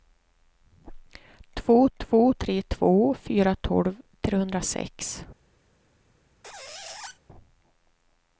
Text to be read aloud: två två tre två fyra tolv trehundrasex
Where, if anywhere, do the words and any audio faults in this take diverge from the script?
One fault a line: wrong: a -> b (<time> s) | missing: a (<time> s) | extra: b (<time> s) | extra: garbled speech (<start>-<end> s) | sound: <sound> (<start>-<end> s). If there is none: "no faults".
sound: squeak (6.4-7.2 s)